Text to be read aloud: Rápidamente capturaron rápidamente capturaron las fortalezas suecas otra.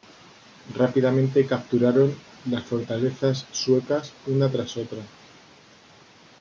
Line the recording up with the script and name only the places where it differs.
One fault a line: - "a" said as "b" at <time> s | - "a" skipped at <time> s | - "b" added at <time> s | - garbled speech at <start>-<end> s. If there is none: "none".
- "rápidamente capturaron" skipped at 2.1 s
- "una tras" added at 4.2 s